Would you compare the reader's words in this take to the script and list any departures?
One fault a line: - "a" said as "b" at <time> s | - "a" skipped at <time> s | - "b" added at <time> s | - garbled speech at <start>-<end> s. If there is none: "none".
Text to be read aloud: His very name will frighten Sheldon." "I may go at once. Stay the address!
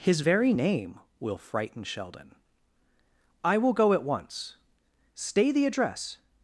- "may" said as "will" at 3.6 s